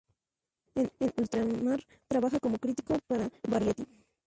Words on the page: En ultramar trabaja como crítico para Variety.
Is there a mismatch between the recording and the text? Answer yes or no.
no